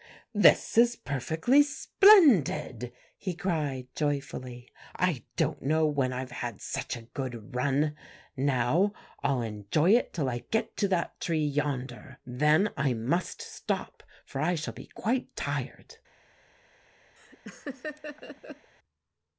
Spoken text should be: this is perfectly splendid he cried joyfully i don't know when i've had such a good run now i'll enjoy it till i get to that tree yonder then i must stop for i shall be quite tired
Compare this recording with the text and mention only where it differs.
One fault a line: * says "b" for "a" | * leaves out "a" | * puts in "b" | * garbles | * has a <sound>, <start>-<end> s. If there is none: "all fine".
* has a laugh, 17.2-18.7 s